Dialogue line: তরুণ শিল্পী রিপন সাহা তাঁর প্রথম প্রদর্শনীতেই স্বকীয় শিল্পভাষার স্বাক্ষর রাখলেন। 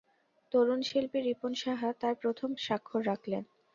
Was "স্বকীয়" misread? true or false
true